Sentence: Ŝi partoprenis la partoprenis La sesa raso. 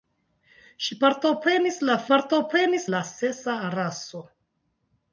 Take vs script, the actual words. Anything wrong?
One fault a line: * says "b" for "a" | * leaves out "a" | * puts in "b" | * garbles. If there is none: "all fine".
all fine